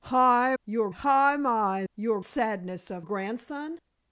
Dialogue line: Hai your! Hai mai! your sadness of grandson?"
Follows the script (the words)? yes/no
yes